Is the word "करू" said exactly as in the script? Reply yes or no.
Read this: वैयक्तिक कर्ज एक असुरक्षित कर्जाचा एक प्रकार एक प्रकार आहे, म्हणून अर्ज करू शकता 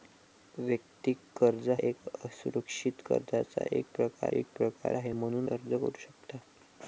yes